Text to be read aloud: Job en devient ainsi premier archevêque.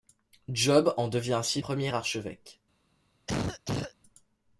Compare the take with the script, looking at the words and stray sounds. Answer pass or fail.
fail